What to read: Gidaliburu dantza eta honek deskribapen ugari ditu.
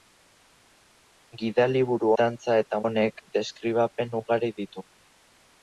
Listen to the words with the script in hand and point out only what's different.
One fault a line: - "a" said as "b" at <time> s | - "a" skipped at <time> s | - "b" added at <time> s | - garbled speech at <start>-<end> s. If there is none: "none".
none